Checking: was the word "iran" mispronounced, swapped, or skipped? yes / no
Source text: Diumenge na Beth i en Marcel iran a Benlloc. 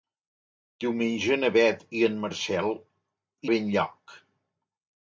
yes